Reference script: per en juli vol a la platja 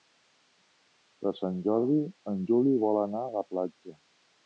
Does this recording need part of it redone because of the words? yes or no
yes